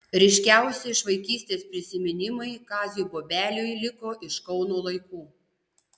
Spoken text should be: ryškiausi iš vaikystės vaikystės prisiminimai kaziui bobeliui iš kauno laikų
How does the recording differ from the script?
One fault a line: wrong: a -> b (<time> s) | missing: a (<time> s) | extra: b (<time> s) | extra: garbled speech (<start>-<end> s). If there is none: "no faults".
missing: vaikystės (1.6 s)
extra: liko (3.9 s)